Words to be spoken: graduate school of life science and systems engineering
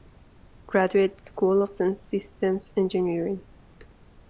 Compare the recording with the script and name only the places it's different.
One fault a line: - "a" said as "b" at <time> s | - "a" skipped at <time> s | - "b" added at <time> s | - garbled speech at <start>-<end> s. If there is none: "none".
- "life science" skipped at 1.8 s